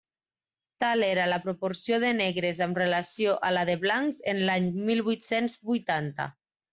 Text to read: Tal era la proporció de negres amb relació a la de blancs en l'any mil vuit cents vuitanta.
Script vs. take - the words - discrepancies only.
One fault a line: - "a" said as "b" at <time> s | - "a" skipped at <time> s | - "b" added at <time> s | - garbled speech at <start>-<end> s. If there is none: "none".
none